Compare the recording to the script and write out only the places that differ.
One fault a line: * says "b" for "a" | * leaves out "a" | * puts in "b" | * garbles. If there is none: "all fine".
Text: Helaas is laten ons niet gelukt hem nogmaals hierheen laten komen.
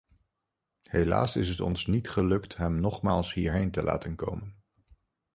* says "het" for "laten"
* puts in "te"